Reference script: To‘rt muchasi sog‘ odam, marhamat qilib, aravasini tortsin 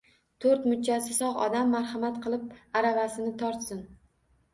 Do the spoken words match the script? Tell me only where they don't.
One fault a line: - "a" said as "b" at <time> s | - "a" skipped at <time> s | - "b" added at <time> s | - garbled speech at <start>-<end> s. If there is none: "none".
none